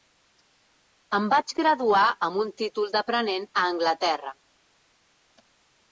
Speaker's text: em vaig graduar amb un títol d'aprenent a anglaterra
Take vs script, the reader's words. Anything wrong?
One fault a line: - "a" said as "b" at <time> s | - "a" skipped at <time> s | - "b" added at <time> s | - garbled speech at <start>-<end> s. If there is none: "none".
none